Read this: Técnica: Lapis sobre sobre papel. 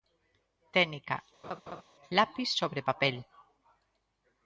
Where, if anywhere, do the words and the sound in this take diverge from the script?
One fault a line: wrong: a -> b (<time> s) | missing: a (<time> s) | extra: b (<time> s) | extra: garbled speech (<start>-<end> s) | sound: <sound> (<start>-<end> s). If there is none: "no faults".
sound: laugh (1.4-1.8 s)
missing: sobre (2.8 s)